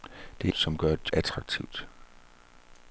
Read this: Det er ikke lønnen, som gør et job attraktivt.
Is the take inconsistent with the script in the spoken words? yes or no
yes